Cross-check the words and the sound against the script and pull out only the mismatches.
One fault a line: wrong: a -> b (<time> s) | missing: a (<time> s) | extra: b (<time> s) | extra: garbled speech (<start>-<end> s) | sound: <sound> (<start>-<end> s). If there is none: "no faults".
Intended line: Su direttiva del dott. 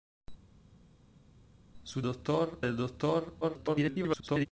wrong: direttiva -> dott (2.0 s)
extra: garbled speech (3.4-4.5 s)